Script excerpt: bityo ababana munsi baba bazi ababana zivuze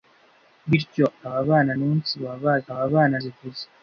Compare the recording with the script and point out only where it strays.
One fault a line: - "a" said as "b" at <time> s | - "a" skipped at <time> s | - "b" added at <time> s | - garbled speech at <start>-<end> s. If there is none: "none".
none